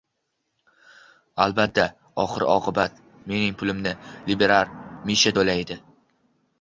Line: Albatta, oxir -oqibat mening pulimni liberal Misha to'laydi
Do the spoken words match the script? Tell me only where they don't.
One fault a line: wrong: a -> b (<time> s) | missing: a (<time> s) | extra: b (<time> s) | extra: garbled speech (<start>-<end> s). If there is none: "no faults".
no faults